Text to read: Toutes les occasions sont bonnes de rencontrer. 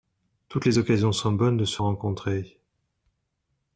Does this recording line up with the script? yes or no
no